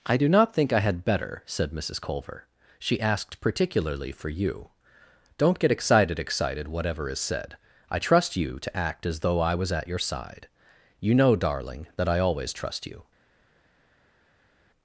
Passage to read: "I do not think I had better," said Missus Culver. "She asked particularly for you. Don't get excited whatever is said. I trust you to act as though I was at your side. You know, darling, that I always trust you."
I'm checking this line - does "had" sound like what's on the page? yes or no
yes